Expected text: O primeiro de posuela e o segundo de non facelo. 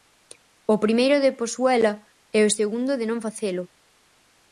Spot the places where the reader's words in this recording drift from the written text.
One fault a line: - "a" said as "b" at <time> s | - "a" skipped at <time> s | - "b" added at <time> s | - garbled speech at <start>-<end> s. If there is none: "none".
none